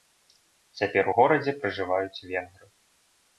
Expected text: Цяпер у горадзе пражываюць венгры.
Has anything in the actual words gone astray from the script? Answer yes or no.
no